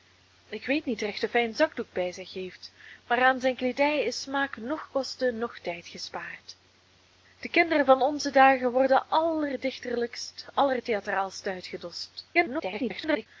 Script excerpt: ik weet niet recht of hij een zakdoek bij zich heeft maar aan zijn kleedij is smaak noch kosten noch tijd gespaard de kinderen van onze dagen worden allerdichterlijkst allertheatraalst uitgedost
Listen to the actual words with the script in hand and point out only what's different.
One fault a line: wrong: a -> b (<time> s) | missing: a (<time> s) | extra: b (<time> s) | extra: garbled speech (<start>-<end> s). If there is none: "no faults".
extra: garbled speech (12.3-13.3 s)